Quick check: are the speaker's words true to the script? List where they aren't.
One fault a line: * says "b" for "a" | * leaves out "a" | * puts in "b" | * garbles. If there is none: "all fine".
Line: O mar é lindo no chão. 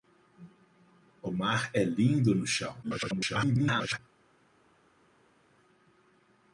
* garbles